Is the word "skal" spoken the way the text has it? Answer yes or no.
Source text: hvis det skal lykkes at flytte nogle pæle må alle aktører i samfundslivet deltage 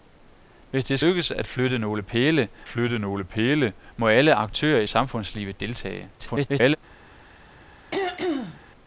no